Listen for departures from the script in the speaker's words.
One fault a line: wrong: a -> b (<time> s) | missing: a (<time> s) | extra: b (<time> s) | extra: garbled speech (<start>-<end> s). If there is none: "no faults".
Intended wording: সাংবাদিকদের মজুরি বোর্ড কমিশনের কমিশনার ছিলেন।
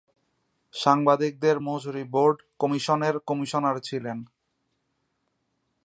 no faults